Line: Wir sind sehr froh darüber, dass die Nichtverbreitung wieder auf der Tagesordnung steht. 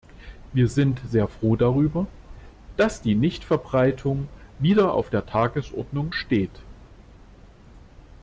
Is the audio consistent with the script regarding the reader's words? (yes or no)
yes